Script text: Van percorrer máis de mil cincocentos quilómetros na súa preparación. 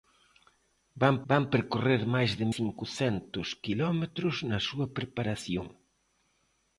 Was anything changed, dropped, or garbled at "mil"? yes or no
yes